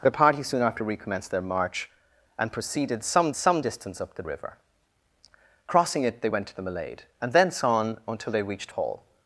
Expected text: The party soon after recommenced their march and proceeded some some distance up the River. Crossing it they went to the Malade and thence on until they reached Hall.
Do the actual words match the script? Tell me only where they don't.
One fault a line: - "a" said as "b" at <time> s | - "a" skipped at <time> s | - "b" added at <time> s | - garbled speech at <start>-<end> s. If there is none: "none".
none